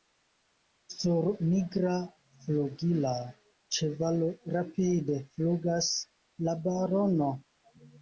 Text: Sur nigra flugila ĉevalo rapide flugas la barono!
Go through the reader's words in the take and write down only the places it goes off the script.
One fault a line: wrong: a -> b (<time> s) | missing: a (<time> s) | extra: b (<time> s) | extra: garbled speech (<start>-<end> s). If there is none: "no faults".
no faults